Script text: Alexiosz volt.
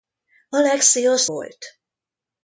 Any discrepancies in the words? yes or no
no